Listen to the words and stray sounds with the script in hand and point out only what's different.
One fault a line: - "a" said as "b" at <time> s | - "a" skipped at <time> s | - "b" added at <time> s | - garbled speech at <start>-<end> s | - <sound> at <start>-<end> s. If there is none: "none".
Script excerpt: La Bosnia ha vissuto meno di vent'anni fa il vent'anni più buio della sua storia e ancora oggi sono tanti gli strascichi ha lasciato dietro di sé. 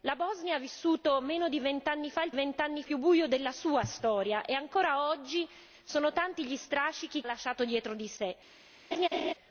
- laugh at 8.9-9.3 s